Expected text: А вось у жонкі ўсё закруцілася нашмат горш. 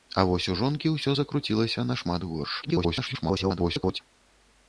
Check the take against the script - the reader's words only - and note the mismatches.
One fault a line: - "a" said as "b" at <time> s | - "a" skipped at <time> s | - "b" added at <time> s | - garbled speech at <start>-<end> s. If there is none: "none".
- garbled speech at 2.6-4.0 s